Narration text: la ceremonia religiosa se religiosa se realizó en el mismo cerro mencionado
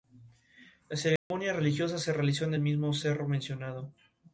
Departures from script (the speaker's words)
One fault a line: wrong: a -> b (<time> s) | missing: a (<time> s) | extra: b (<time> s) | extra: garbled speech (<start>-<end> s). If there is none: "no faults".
missing: religiosa se (2.1 s)